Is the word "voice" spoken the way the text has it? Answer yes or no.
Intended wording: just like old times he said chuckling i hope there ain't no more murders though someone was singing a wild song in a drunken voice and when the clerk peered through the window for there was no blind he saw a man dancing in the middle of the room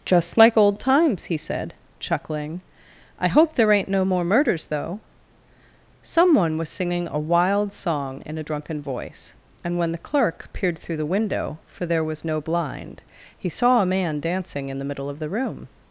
yes